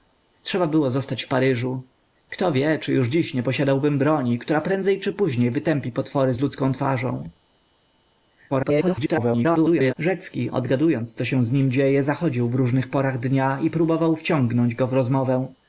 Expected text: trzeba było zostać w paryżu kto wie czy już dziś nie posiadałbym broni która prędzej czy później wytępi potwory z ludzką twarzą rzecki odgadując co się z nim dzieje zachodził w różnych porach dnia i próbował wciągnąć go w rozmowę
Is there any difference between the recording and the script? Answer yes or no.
yes